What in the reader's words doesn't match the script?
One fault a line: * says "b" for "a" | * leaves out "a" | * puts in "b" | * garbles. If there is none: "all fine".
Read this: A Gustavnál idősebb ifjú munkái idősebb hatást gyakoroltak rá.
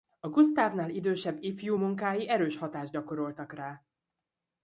* says "erős" for "idősebb"